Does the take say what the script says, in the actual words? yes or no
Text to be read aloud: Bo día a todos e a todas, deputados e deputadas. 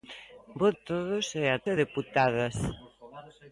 no